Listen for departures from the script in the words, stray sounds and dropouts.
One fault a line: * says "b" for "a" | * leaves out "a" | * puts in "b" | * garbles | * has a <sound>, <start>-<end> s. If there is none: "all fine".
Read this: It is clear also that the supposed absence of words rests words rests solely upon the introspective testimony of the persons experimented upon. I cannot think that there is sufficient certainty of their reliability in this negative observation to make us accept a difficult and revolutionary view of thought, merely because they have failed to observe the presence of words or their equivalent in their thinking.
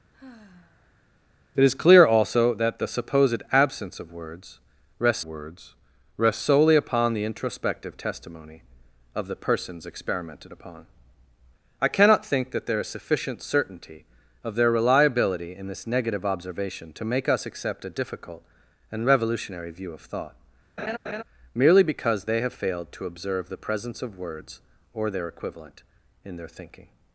* has a sigh, 0.1-1.0 s
* has a laugh, 20.8-21.2 s